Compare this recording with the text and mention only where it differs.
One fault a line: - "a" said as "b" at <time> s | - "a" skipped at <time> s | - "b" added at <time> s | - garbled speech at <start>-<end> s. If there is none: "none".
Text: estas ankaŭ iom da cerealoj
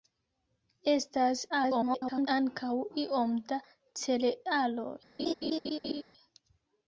- garbled speech at 1.5-2.3 s